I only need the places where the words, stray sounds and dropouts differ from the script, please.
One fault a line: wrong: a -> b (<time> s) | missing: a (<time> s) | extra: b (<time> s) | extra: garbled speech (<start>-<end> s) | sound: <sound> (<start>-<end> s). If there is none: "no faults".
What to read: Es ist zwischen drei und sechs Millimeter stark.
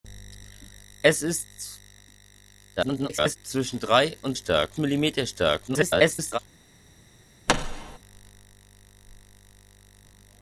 extra: garbled speech (2.8-3.4 s)
wrong: sechs -> stark (4.3 s)
extra: garbled speech (5.7-6.4 s)
sound: thud (7.5-8.0 s)